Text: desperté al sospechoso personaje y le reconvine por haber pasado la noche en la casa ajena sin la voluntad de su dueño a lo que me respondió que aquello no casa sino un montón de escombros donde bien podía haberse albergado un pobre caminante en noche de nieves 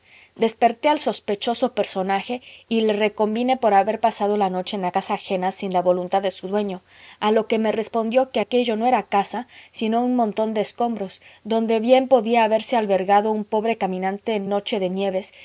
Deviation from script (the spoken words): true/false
true